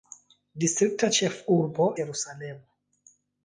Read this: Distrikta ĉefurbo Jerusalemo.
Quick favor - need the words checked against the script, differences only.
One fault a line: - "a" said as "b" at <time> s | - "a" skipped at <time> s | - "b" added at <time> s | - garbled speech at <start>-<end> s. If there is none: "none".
none